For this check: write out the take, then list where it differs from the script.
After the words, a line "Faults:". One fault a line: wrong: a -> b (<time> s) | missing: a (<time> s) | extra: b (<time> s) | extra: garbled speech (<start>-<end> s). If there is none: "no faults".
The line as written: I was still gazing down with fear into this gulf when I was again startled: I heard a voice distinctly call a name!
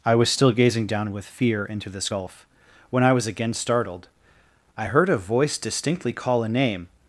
I was still gazing down with fear into this gulf when I was again startled: I heard a voice distinctly call a name!
Faults:
no faults